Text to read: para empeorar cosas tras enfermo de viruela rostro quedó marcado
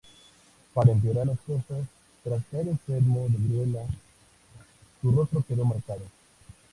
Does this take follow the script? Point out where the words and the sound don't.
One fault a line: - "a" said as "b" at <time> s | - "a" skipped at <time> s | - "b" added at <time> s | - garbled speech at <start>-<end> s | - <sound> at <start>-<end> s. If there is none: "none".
- "las" added at 1.2 s
- "caer" added at 2.5 s
- "su" added at 5.0 s